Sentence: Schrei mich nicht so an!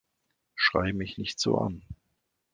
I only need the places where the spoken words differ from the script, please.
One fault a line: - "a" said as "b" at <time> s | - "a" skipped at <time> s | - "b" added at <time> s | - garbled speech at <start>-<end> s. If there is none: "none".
none